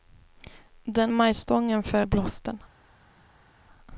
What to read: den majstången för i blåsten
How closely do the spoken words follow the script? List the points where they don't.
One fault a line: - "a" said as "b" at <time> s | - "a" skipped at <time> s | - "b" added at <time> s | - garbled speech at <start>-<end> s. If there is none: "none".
none